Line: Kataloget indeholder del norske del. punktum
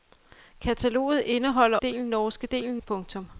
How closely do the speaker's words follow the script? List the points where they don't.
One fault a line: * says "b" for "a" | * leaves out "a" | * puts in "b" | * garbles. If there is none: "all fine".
all fine